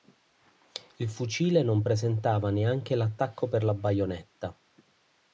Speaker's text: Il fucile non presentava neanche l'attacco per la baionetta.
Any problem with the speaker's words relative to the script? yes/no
no